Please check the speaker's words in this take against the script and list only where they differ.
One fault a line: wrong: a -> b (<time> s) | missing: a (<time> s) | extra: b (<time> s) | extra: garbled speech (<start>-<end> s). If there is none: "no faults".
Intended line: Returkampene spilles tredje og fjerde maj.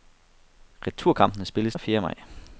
missing: tredje (1.8 s)